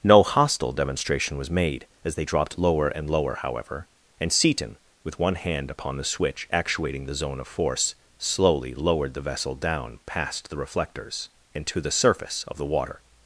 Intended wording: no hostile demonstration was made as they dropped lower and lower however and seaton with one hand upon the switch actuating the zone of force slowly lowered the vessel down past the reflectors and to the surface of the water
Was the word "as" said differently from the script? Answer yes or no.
no